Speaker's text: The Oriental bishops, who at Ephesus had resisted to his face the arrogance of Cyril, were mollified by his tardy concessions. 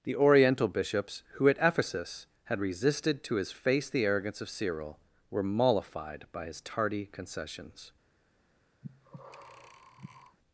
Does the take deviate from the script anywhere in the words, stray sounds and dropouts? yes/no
yes